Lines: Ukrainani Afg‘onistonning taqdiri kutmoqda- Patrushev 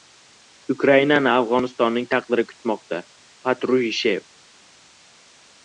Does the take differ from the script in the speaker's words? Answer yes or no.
no